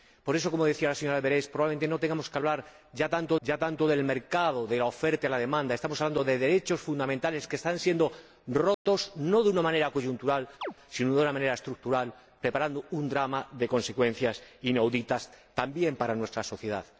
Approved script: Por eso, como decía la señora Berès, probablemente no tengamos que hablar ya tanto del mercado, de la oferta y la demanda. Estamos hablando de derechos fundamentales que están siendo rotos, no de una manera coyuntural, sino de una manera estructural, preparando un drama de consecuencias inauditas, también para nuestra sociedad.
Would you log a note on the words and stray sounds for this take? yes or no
yes